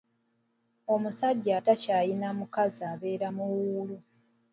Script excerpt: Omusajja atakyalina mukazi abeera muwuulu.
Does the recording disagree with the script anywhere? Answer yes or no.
no